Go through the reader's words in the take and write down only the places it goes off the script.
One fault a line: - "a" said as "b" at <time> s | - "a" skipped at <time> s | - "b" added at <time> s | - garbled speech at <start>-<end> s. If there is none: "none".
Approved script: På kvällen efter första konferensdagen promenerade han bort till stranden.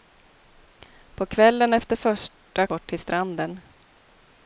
- "konferensdagen promenerade han" skipped at 2.7 s